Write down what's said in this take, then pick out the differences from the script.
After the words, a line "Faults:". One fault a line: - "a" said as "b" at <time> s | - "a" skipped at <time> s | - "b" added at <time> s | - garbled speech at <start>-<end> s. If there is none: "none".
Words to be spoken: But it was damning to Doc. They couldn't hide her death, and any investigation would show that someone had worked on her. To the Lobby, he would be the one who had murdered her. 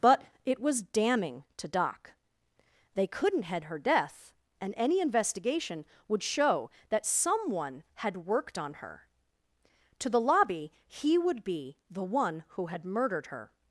But it was damning to Doc. They couldn't head her death, and any investigation would show that someone had worked on her. To the Lobby, he would be the one who had murdered her.
Faults:
- "hide" said as "head" at 3.4 s